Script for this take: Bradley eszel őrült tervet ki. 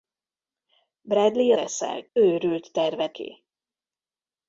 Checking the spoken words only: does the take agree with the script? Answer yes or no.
yes